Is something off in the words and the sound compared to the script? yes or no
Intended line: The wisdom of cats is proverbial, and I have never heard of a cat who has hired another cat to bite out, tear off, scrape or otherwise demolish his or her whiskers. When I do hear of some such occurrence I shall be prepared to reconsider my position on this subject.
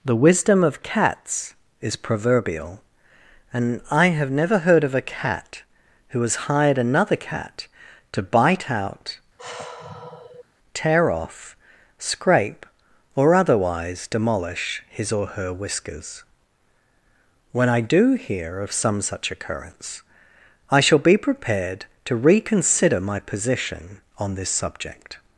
yes